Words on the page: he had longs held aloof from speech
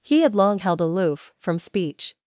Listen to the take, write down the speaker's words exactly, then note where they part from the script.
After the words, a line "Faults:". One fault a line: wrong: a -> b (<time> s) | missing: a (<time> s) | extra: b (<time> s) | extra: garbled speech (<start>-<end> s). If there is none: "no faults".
he had long held aloof from speech
Faults:
wrong: longs -> long (0.3 s)